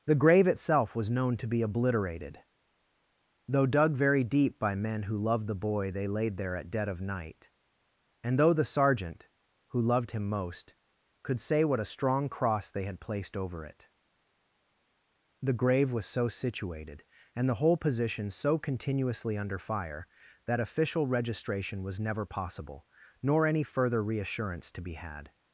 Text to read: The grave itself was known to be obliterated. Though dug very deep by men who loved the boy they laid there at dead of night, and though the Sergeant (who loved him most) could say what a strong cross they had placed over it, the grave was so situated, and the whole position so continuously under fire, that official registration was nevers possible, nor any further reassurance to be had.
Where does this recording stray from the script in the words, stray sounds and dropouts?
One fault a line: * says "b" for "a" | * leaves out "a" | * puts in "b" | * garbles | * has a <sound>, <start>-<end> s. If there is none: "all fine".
* says "never" for "nevers"